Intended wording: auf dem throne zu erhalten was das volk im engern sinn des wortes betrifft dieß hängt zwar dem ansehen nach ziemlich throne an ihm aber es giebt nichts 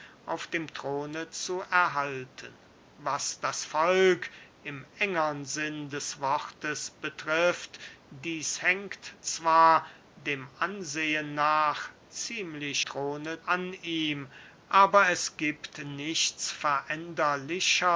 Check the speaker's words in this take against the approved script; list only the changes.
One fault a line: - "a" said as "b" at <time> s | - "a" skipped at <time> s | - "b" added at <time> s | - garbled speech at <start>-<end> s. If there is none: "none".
none